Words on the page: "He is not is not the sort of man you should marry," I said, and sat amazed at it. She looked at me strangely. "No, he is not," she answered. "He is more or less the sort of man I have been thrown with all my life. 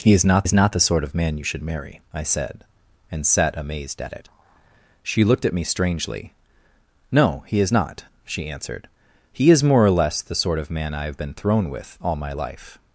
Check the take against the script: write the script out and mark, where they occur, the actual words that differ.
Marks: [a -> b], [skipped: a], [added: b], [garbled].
"He is not is not the sort of man you should marry," I said, and sat amazed at it. She looked at me strangely. "No, he is not," she answered. "He is more or less the sort of man I have been thrown with all my life.